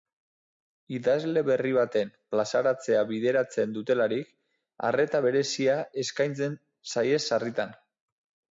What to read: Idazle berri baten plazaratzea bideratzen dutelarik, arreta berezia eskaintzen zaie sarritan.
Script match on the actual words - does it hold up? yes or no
yes